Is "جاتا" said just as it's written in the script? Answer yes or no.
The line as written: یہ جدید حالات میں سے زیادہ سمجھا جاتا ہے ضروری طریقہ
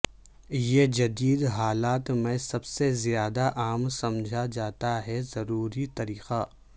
yes